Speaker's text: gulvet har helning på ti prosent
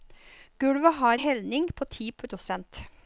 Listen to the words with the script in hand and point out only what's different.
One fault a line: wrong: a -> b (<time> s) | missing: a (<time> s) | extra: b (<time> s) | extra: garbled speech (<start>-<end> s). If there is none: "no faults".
no faults